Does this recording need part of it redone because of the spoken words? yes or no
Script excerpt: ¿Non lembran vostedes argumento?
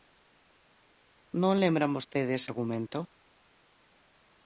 no